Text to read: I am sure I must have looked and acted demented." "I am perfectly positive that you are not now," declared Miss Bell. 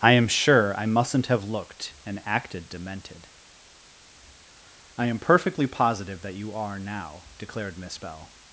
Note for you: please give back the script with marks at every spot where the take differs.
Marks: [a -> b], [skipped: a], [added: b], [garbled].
I am sure I [must -> mustn't] have looked and acted demented." "I am perfectly positive that you are [skipped: not] now," declared Miss Bell.